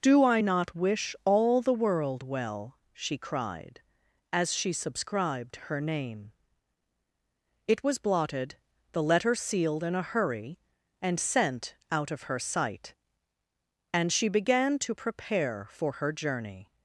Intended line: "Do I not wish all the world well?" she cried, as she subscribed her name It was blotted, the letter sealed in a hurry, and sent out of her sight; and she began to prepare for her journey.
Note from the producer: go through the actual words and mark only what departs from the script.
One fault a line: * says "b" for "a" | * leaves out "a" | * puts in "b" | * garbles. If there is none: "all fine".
all fine